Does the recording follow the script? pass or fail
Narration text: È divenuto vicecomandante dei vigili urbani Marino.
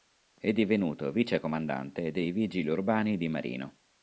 fail